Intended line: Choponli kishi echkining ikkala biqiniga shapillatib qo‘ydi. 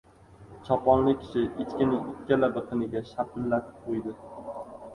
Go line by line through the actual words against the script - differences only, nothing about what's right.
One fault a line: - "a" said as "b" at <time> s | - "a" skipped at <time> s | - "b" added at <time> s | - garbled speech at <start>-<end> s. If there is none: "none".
none